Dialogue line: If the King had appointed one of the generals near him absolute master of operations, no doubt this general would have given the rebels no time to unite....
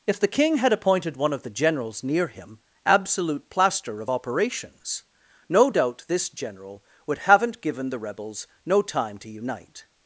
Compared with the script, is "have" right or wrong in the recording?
wrong